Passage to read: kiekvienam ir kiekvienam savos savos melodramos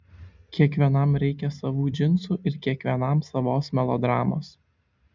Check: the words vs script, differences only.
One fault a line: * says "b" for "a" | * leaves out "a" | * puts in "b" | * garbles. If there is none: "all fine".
* puts in "reikia savų džinsų"
* leaves out "savos"